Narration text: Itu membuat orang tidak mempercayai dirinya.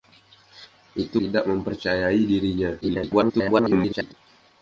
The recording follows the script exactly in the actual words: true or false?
false